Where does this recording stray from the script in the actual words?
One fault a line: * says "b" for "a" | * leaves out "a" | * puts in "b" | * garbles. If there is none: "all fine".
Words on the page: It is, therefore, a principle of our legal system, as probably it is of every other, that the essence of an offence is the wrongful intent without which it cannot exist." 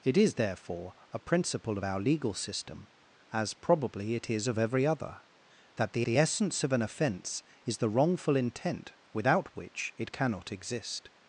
* puts in "the"